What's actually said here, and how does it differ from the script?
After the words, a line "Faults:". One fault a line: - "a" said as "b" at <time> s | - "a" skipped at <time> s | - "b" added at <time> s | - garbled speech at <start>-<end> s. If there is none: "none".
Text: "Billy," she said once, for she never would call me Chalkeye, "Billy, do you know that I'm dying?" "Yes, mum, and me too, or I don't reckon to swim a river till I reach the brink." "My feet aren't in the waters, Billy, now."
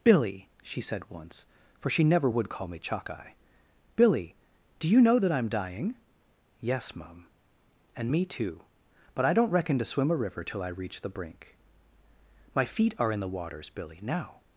"Billy," she said once, for she never would call me Chalkeye, "Billy, do you know that I'm dying?" "Yes, mum, and me too, but I don't reckon to swim a river till I reach the brink." "My feet are in the waters, Billy, now."
Faults:
- "or" said as "but" at 9.1 s
- "aren't" said as "are" at 13.0 s